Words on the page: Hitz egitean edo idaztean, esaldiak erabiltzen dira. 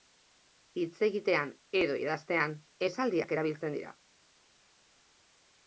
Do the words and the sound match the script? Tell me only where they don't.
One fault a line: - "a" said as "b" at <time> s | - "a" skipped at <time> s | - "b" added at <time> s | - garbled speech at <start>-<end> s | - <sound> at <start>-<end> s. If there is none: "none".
none